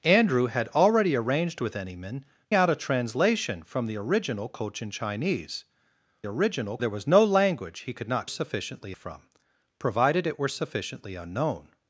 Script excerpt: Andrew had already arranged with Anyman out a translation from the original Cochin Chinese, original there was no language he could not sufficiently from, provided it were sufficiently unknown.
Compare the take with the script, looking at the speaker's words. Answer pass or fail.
pass